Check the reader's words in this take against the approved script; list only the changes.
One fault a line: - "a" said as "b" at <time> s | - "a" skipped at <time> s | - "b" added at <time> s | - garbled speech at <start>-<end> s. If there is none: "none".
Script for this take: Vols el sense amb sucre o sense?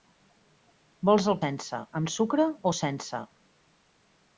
none